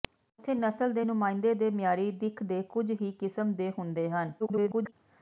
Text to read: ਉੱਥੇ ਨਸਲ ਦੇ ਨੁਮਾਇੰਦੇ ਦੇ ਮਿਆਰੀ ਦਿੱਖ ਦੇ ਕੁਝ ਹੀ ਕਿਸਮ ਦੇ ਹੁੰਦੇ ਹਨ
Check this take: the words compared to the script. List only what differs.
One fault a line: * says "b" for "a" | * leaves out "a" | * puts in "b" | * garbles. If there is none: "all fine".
* garbles